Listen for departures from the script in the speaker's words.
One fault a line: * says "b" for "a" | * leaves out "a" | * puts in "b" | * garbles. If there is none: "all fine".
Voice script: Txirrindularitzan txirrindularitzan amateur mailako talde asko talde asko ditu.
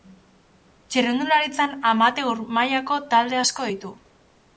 * leaves out "txirrindularitzan"
* leaves out "talde asko"